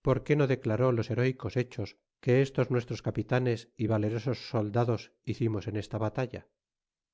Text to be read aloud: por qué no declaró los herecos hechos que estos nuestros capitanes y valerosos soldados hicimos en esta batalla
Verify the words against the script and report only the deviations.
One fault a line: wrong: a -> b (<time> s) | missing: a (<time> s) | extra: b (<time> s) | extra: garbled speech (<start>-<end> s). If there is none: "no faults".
no faults